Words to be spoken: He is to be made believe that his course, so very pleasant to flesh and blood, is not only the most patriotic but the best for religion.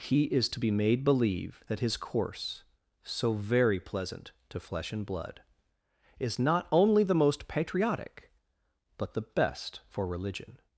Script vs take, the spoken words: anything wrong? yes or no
no